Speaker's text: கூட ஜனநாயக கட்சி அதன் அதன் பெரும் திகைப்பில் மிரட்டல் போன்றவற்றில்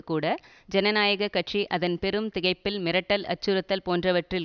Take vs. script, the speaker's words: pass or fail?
fail